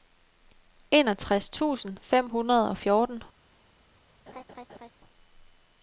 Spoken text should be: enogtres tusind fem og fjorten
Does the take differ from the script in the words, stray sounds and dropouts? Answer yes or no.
yes